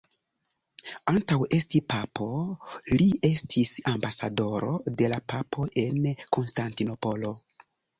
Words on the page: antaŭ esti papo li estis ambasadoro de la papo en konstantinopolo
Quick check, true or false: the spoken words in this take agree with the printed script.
true